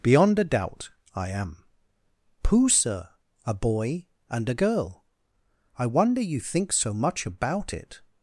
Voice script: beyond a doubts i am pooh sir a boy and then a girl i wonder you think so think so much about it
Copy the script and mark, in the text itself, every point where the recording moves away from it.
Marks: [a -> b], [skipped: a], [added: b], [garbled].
beyond a [doubts -> doubt] i am pooh sir a boy and [skipped: then] a girl i wonder you think so [skipped: think so] much about it